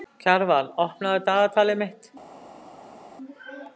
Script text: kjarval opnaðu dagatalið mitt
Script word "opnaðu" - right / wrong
right